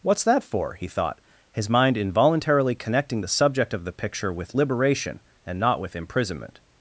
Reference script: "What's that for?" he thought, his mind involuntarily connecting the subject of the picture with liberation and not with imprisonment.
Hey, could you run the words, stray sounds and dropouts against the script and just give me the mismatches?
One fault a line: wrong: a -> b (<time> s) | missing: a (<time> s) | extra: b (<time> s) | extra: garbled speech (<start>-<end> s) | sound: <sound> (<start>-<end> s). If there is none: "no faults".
no faults